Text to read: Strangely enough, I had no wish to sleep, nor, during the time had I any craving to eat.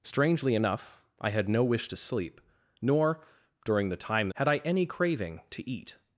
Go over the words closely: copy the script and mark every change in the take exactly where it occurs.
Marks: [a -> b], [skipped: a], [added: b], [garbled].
Strangely enough, I had no wish to sleep, nor, during the time had I any craving to eat.